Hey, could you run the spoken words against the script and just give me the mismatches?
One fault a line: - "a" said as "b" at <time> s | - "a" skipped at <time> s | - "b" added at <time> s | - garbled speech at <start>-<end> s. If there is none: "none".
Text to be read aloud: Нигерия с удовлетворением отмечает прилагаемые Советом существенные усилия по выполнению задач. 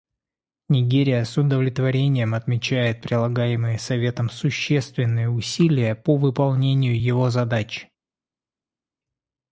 - "его" added at 7.0 s